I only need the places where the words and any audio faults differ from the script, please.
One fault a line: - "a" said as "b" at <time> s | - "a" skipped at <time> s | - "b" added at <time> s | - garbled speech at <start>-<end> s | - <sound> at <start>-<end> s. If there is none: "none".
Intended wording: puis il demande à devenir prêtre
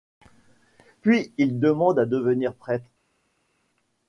none